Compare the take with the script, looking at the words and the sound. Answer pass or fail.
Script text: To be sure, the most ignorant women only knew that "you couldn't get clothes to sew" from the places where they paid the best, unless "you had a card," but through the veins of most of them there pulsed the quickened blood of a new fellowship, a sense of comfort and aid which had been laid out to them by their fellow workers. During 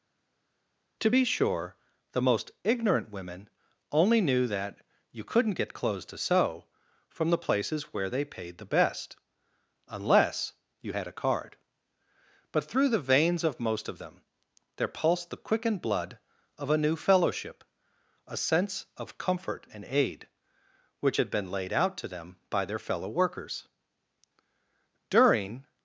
pass